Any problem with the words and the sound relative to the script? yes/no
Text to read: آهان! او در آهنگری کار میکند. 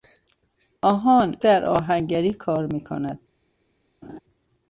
yes